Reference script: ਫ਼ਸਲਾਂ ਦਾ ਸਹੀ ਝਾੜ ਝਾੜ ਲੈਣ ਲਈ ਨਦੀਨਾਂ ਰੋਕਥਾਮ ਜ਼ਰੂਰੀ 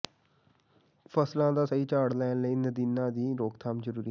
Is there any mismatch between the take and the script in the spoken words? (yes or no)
yes